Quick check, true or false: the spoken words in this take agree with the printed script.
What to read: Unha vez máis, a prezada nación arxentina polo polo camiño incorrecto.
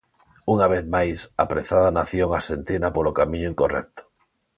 false